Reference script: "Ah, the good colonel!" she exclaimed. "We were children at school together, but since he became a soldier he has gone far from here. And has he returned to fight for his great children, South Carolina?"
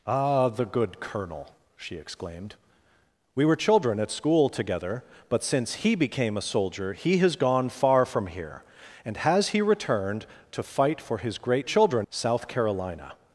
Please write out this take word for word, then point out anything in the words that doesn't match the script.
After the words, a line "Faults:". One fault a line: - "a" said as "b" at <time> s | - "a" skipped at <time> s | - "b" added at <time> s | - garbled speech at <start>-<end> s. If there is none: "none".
"Ah, the good colonel!" she exclaimed. "We were children at school together, but since he became a soldier he has gone far from here. And has he returned to fight for his great children, South Carolina?"
Faults:
none